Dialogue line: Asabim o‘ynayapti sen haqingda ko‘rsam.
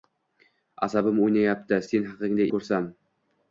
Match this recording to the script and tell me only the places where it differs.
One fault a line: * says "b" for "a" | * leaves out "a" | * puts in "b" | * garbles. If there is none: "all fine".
all fine